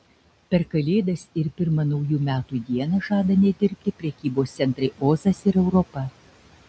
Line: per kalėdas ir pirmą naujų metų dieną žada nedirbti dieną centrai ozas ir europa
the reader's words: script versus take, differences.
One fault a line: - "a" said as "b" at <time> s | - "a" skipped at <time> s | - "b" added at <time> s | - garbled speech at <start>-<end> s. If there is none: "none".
- "dieną" said as "prekybos" at 4.0 s